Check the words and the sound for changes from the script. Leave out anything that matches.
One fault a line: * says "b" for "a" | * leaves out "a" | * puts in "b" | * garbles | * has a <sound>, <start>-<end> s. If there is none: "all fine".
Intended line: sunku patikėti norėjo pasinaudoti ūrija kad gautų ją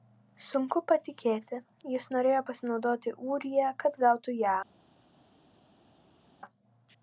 * puts in "jis"